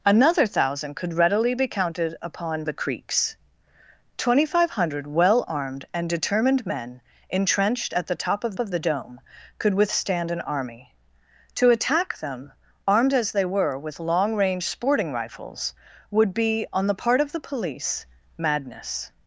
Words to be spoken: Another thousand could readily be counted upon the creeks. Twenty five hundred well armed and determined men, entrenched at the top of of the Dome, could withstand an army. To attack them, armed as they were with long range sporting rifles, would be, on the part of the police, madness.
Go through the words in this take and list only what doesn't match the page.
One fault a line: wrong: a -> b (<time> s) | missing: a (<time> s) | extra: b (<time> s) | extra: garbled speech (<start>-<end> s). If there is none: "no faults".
no faults